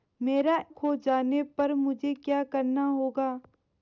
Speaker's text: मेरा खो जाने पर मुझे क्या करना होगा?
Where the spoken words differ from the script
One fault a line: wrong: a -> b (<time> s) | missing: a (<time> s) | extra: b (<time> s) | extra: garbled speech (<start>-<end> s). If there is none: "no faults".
no faults